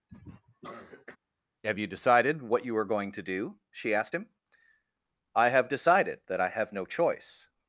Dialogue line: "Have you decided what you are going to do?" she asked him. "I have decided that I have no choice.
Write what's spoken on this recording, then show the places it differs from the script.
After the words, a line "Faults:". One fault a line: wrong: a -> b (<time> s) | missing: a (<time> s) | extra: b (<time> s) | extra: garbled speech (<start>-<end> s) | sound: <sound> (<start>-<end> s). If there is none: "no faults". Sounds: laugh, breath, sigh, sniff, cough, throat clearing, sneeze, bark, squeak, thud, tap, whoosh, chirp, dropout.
"Have you decided what you are going to do?" she asked him. "I have decided that I have no choice.
Faults:
sound: cough (0.1-1.2 s)